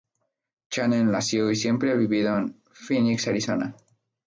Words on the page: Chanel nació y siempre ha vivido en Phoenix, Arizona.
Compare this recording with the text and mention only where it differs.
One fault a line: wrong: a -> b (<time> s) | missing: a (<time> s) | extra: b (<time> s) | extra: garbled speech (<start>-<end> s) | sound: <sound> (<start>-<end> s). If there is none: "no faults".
no faults